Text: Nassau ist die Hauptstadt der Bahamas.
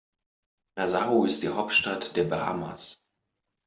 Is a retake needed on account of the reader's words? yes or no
no